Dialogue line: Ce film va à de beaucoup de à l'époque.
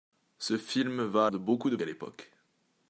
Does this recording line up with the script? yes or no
yes